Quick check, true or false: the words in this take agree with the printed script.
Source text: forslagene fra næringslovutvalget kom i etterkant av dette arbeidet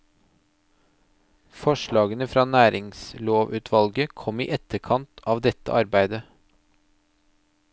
true